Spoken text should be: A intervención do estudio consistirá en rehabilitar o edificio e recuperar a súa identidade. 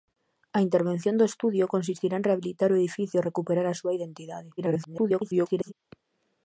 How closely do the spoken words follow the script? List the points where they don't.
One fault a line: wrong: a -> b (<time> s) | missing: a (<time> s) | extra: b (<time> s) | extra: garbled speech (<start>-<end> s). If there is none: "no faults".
extra: garbled speech (4.6-5.7 s)